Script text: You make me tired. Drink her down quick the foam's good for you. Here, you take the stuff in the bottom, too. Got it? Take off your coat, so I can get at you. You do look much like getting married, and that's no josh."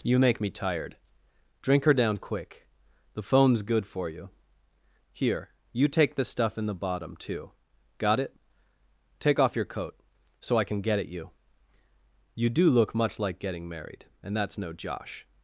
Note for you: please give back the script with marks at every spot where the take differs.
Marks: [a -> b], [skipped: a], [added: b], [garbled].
You make me tired. Drink her down quick the foam's good for you. Here, you take the stuff in the bottom, too. Got it? Take off your coat, so I can get at you. You do look much like getting married, and that's no josh."